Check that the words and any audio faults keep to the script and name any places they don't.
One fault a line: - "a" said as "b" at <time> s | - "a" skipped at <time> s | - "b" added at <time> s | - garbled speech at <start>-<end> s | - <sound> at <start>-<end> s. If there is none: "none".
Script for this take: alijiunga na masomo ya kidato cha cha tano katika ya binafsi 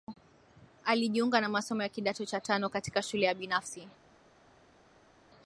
- "cha" skipped at 2.4 s
- "shule" added at 3.0 s